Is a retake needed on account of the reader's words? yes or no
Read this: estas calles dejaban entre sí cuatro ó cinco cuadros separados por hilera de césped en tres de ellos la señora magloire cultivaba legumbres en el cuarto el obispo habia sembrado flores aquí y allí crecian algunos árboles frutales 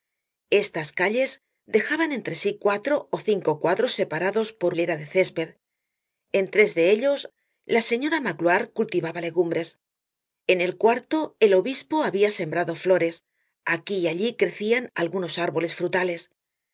no